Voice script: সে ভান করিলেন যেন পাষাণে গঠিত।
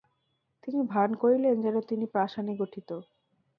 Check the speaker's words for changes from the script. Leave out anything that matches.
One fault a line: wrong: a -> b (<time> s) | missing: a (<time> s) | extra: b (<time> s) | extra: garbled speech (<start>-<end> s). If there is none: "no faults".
wrong: সে -> তিনি (0.6 s)
extra: তিনি (1.9 s)